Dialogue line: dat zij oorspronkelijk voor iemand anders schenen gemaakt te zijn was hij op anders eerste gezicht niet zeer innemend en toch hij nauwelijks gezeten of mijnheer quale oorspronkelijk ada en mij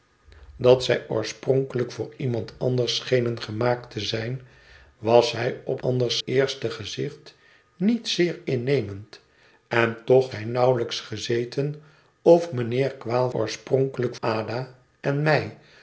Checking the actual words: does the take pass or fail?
pass